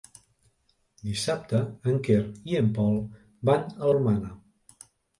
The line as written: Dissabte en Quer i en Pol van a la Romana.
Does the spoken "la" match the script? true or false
false